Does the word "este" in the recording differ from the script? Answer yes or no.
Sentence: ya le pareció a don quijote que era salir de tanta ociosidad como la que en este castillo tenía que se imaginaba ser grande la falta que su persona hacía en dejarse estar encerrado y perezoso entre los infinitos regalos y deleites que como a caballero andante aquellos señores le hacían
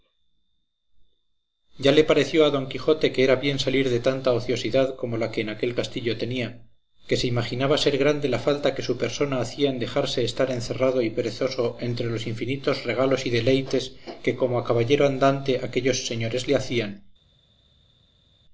yes